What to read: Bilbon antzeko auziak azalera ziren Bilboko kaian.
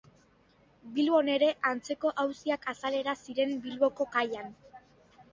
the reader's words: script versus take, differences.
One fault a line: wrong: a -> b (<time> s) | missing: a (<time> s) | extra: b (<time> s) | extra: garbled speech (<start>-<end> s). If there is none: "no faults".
extra: ere (1.3 s)